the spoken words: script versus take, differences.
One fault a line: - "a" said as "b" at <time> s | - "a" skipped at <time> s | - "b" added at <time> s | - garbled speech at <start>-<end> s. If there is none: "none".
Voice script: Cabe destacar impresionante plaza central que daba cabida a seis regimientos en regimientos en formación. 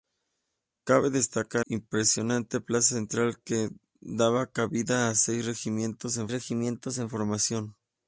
none